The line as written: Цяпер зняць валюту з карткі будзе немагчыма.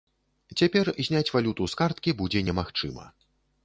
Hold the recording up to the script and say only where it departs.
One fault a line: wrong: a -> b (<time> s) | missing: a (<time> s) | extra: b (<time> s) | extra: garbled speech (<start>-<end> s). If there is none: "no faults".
no faults